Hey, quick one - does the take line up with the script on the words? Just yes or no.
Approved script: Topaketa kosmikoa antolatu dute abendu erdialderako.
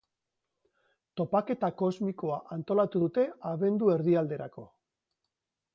yes